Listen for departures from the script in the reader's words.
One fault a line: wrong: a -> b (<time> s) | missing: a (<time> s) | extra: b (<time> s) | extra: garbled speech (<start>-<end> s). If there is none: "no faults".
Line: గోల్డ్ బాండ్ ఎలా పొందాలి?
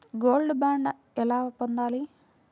no faults